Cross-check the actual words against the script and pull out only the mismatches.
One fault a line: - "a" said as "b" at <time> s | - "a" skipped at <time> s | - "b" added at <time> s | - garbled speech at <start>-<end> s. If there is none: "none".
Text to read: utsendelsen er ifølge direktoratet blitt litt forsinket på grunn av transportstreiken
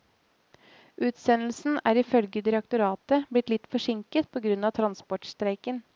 none